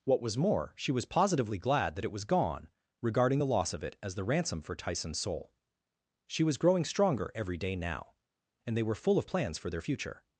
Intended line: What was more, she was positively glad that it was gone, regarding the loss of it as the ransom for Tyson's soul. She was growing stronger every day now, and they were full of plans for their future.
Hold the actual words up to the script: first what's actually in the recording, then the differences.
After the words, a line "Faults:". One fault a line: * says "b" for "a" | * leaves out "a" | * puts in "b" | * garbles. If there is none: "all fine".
What was more, she was positively glad that it was gone, regarding the loss of it as the ransom for Tyson's soul. She was growing stronger every day now, and they were full of plans for their future.
Faults:
all fine